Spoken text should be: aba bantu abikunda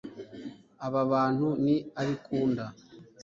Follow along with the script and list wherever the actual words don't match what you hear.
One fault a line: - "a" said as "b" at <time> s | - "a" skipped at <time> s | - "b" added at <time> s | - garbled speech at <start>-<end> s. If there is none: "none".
- "ni" added at 1.6 s